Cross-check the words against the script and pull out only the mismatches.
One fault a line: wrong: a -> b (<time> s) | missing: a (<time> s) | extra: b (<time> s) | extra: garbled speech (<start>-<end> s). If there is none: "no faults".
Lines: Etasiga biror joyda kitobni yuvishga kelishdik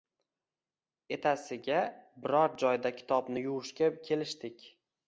no faults